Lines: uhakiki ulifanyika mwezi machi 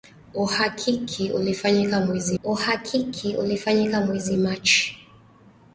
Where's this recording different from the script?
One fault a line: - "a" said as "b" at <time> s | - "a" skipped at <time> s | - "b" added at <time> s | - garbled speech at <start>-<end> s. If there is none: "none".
- "uhakiki ulifanyika mwezi" added at 2.4 s